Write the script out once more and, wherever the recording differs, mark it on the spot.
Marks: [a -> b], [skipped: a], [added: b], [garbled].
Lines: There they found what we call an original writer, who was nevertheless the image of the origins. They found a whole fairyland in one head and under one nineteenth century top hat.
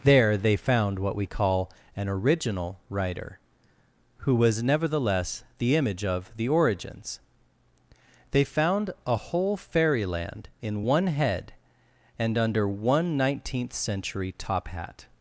There they found what we call an original writer, who was nevertheless the image of the origins. They found a whole fairyland in one head and under one nineteenth century top hat.